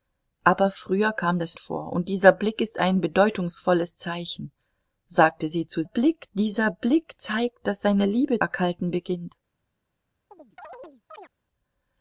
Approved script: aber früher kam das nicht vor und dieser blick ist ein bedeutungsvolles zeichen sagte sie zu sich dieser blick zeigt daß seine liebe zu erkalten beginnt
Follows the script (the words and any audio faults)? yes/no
no